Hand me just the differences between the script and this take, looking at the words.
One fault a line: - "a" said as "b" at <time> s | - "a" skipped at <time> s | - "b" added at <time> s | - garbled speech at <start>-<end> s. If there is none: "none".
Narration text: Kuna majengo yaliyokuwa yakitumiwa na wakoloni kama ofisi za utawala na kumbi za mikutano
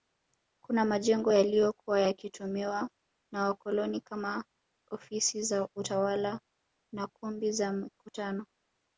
none